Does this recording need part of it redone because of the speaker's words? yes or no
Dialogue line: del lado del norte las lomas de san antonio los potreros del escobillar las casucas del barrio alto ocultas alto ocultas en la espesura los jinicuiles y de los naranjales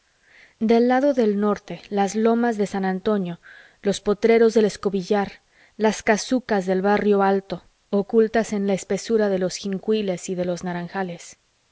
yes